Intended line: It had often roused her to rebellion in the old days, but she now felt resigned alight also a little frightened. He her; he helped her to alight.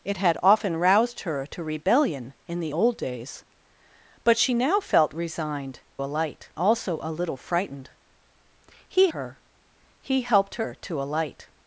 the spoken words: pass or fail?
pass